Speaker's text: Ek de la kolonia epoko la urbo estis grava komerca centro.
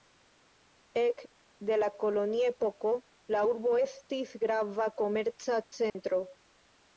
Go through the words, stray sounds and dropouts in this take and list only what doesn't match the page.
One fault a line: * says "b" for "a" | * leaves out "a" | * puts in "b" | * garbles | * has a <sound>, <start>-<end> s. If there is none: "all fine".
* has a dropout, 5.9-5.9 s